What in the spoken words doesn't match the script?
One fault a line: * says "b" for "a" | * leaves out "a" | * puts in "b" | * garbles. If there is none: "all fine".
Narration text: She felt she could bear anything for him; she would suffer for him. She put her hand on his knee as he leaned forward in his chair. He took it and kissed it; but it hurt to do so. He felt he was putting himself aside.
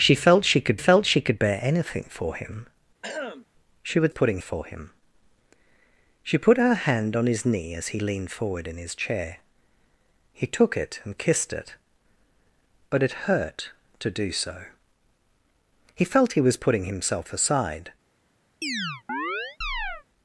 * puts in "felt she could"
* says "putting" for "suffer"